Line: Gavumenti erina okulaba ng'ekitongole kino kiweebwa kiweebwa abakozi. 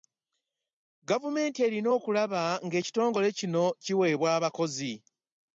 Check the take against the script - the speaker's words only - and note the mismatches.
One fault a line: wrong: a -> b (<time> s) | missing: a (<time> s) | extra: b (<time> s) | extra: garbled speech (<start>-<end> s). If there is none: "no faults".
missing: kiweebwa (4.3 s)